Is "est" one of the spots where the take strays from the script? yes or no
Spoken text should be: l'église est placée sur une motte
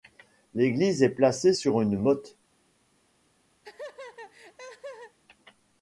no